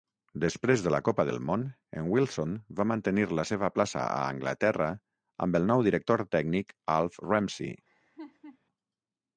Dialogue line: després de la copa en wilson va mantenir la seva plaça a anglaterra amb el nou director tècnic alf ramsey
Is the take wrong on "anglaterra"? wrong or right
right